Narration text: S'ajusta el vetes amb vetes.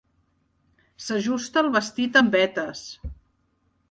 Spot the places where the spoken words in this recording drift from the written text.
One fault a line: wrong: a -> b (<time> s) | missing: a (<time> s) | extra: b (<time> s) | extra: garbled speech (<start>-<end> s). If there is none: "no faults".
wrong: vetes -> vestit (1.8 s)